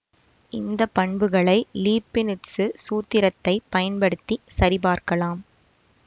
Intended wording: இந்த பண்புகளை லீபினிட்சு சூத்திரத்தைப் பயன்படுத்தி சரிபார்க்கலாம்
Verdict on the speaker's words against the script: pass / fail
pass